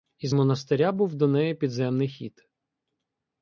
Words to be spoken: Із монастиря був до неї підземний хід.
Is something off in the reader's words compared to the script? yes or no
no